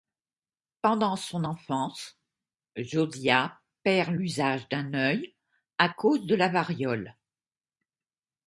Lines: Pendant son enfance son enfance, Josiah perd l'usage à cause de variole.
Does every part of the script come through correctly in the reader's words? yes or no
no